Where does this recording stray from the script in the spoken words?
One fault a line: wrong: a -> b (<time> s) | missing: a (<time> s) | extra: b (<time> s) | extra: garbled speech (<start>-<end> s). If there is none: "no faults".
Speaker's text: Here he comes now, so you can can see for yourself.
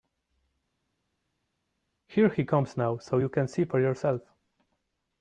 missing: can (3.5 s)